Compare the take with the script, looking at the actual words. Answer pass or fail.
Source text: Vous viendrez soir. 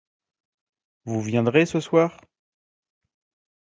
fail